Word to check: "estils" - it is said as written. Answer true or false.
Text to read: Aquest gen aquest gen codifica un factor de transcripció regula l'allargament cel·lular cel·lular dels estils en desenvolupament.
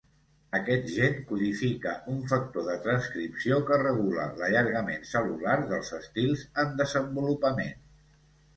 true